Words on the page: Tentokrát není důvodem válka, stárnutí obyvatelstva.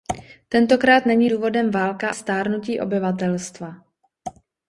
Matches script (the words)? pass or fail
pass